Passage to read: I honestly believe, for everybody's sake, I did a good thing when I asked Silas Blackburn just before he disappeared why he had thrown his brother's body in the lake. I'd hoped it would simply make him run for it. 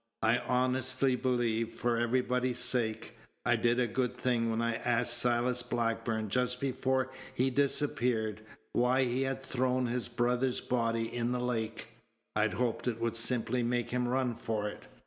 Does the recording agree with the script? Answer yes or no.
yes